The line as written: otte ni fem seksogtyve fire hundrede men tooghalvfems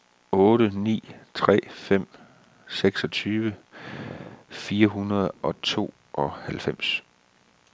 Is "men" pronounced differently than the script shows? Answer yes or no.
yes